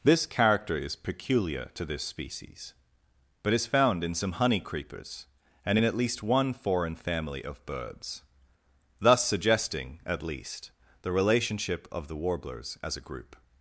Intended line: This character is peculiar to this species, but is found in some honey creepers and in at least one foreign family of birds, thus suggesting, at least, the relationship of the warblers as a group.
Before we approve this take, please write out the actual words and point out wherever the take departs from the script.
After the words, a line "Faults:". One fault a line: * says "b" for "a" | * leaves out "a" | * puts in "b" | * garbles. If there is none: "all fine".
This character is peculiar to this species, but is found in some honey creepers and in at least one foreign family of birds, thus suggesting, at least, the relationship of the warblers as a group.
Faults:
all fine